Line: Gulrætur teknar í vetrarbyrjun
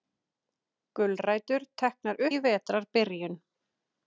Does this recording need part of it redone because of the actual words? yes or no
no